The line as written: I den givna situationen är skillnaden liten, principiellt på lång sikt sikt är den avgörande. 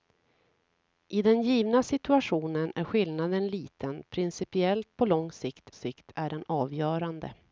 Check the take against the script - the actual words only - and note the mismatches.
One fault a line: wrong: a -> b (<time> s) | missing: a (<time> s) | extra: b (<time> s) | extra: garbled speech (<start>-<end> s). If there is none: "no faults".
no faults